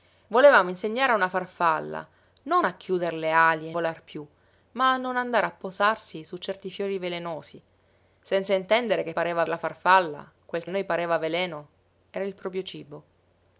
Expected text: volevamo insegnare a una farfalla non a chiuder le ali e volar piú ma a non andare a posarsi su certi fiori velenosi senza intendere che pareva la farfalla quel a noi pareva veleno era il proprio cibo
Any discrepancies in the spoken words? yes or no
no